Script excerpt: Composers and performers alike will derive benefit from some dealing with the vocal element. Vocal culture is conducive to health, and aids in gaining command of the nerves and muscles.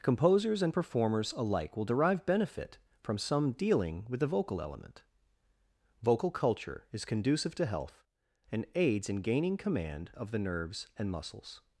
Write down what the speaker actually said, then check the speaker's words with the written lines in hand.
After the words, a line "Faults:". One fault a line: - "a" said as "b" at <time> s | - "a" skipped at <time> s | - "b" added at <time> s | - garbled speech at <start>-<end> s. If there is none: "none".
Composers and performers alike will derive benefit from some dealing with the vocal element. Vocal culture is conducive to health, and aids in gaining command of the nerves and muscles.
Faults:
none